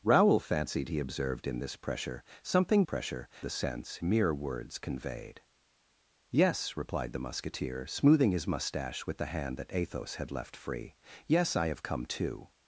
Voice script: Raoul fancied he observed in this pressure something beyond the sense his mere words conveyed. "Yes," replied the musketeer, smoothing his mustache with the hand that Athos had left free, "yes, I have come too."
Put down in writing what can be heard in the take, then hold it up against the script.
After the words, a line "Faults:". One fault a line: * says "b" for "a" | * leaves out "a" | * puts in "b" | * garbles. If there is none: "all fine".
Raoul fancied he observed in this pressure something pressure the sense mere words conveyed. "Yes," replied the musketeer, smoothing his mustache with the hand that Athos had left free, "yes, I have come too."
Faults:
* says "pressure" for "beyond"
* leaves out "his"